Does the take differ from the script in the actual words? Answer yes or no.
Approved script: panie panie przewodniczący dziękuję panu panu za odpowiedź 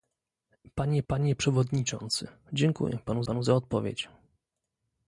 no